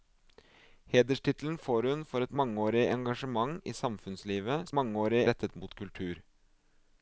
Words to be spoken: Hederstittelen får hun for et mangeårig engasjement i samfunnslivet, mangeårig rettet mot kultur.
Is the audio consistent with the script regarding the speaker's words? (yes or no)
yes